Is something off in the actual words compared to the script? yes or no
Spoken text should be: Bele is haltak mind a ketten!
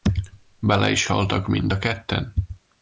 no